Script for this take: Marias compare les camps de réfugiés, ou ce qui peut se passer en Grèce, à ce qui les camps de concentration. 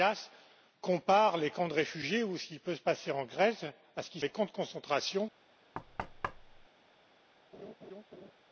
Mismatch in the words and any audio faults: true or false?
true